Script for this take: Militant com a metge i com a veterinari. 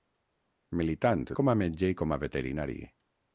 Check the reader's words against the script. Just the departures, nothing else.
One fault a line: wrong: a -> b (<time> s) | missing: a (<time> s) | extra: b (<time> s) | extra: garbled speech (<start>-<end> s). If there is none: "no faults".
no faults